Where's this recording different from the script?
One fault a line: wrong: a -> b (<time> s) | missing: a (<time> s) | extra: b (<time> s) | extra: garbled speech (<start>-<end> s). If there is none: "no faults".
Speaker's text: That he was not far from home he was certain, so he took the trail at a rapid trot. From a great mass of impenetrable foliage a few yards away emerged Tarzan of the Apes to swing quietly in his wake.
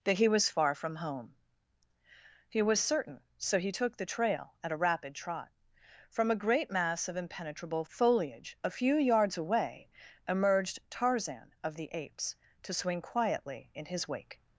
missing: not (0.5 s)